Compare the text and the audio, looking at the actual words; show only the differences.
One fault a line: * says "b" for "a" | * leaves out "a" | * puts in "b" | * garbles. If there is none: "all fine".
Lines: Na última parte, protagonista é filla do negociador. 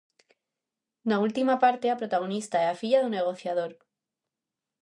* puts in "a"
* puts in "a"